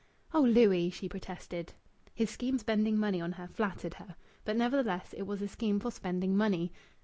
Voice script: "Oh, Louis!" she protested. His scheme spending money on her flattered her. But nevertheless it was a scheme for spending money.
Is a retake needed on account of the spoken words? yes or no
no